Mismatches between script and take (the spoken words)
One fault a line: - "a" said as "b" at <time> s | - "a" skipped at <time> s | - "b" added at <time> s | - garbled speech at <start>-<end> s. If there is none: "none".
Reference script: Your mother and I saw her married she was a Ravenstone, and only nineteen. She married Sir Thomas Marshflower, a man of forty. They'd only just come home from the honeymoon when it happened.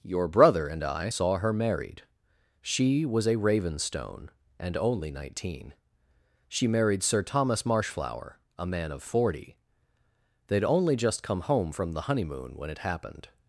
- "mother" said as "brother" at 0.3 s